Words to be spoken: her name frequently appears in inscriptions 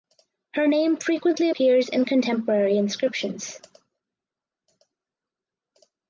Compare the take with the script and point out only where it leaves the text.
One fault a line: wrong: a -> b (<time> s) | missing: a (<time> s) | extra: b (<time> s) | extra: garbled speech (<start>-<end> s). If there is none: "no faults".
extra: contemporary (2.0 s)